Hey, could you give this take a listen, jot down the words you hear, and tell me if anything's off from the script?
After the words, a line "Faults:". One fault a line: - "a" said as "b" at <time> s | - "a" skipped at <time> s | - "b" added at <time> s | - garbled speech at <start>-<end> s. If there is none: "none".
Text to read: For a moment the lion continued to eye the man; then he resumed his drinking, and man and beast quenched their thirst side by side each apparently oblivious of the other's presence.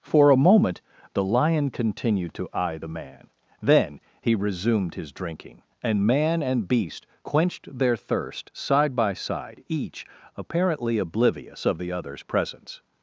For a moment the lion continued to eye the man; then he resumed his drinking, and man and beast quenched their thirst side by side each apparently oblivious of the other's presence.
Faults:
none